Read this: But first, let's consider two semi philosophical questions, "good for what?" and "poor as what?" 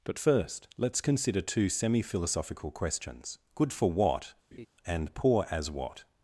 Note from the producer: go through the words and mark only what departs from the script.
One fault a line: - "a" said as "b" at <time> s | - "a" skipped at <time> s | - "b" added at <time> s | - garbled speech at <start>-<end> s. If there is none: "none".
none